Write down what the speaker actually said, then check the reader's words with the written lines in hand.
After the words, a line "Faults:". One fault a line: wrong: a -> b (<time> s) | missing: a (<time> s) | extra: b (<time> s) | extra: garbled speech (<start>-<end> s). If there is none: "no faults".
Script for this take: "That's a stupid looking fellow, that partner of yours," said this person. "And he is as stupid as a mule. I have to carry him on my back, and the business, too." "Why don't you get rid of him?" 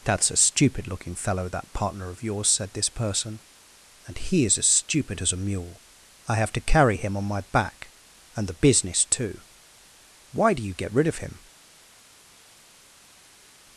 "That's a stupid looking fellow, that partner of yours," said this person. "And he is as stupid as a mule. I have to carry him on my back, and the business, too." "Why do you get rid of him?"
Faults:
wrong: don't -> do (10.5 s)